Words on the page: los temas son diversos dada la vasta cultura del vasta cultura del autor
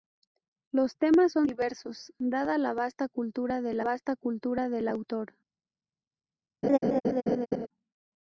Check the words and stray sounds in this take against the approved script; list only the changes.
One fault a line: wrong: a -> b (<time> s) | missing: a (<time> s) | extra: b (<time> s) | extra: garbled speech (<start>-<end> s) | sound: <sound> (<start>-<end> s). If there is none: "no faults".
sound: laugh (6.6-7.7 s)